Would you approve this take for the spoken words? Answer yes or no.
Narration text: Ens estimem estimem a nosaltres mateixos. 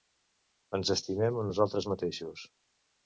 no